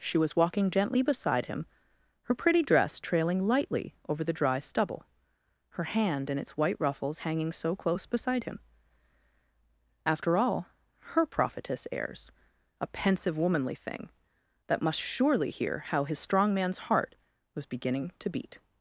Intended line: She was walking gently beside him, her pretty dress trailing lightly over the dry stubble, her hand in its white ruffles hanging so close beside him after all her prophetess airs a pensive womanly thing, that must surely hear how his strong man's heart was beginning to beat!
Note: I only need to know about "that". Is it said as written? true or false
true